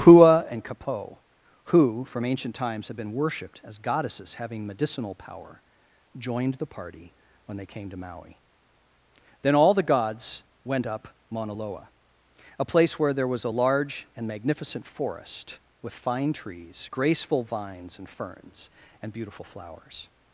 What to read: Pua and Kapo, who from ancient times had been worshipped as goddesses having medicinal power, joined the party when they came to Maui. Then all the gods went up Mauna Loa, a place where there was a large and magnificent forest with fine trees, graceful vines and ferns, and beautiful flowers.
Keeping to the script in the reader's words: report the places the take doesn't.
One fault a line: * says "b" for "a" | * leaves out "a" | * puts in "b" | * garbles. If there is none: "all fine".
all fine